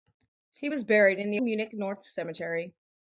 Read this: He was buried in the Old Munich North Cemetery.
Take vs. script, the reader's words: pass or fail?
fail